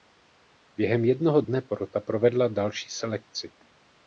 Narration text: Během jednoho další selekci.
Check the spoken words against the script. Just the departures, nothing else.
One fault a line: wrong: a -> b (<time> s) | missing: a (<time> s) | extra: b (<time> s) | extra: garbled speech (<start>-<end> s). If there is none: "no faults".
extra: dne porota provedla (1.4 s)